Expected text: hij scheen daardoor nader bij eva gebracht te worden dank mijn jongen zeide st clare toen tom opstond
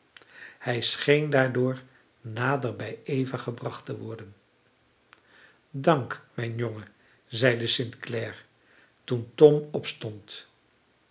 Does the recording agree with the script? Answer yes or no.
yes